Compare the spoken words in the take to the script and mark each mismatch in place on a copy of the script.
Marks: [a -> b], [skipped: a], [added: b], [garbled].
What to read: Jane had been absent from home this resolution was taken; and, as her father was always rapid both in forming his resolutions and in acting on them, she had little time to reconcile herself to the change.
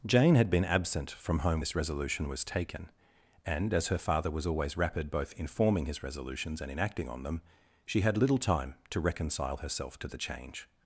Jane had been absent from home this resolution was taken; and, as her father was always rapid both in forming his resolutions and in acting on them, she had little time to reconcile herself to the change.